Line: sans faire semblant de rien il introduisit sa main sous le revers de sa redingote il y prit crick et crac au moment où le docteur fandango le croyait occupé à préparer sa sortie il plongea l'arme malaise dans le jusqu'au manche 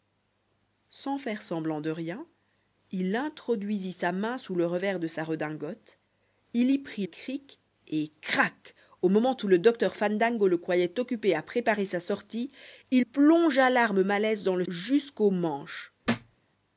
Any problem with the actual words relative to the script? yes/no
no